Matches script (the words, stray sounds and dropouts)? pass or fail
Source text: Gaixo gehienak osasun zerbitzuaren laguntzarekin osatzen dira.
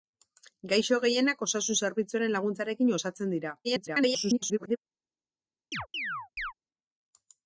fail